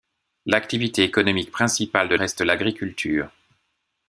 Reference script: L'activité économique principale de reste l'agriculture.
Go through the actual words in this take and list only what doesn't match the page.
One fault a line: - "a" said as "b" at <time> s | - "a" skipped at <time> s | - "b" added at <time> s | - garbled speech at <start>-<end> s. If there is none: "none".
none